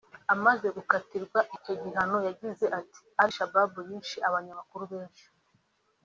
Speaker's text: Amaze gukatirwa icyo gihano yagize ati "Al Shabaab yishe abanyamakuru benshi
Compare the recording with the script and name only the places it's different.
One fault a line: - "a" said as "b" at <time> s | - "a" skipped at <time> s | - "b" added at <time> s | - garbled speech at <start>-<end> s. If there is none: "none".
none